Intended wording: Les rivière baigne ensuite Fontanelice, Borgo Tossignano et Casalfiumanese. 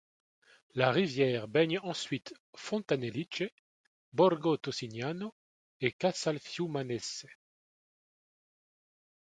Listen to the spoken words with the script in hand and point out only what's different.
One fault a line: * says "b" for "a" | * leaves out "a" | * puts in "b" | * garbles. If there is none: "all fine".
* says "La" for "Les"